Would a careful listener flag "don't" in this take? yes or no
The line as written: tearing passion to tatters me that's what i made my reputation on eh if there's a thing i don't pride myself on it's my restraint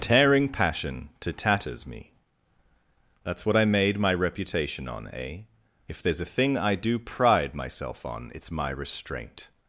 yes